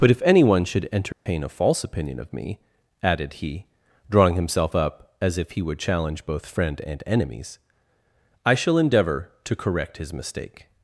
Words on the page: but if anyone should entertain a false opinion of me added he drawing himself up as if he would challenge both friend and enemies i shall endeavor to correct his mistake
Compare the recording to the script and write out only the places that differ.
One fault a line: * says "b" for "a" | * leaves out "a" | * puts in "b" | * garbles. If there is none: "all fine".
all fine